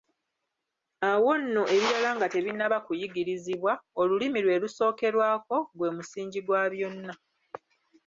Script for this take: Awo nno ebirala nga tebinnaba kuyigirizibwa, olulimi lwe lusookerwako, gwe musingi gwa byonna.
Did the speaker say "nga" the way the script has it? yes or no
yes